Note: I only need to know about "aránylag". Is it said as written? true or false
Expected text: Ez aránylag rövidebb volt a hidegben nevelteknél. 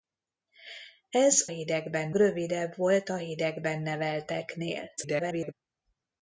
false